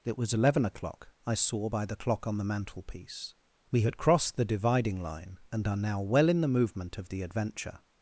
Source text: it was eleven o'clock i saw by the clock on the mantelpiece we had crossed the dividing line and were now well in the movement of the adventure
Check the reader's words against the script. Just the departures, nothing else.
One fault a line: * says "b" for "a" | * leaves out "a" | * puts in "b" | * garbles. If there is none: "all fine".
* says "are" for "were"